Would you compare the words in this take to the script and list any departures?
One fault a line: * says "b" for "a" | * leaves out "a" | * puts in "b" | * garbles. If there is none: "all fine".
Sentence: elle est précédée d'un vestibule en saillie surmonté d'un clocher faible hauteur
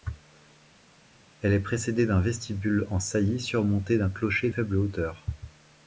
all fine